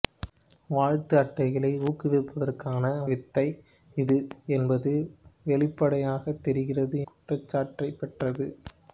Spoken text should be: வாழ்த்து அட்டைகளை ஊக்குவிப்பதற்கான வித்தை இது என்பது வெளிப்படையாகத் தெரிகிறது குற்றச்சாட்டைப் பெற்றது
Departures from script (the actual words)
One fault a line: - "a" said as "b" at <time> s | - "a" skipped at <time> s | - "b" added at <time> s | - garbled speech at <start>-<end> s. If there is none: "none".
none